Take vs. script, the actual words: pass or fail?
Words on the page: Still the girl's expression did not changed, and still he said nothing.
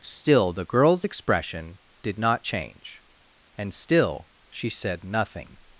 fail